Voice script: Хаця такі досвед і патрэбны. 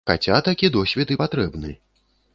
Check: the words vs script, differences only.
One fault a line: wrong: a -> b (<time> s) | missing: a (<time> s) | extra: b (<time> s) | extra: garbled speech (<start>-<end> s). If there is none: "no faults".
no faults